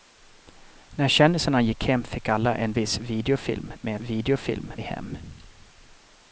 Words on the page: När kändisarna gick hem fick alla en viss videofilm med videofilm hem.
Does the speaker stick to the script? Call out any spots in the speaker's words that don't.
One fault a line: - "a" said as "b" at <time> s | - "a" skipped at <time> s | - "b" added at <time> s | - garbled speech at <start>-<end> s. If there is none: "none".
none